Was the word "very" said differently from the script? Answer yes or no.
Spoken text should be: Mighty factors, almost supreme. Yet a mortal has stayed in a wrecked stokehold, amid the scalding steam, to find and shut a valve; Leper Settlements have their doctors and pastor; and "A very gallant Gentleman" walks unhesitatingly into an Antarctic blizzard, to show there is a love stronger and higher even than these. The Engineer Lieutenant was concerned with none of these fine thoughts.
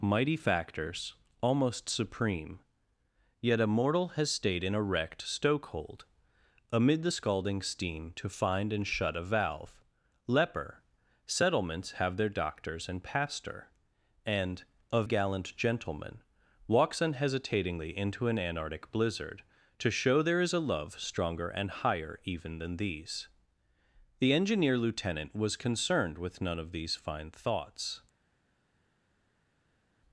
yes